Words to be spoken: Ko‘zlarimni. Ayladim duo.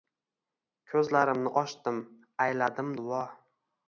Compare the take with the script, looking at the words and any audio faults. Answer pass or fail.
fail